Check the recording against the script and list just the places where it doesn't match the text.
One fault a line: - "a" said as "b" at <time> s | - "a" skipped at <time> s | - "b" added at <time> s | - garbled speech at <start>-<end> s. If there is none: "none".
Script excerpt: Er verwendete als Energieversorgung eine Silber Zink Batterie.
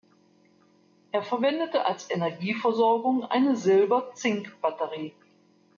none